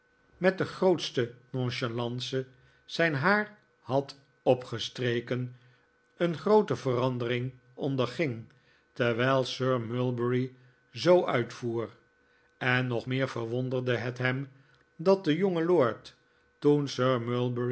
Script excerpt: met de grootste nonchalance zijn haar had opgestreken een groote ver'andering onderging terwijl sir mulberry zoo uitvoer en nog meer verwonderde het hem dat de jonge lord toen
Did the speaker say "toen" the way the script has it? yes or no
yes